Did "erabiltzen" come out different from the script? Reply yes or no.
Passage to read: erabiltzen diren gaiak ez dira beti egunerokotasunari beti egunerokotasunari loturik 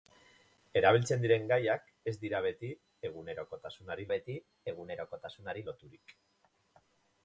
no